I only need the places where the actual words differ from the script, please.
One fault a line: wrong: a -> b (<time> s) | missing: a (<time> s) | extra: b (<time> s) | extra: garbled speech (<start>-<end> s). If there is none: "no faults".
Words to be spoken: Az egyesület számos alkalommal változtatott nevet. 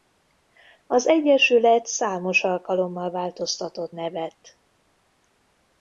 no faults